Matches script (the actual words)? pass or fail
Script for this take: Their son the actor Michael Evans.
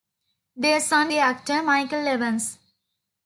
pass